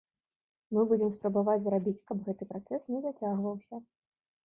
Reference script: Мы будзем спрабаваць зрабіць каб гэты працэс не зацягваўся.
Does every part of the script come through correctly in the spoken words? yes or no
yes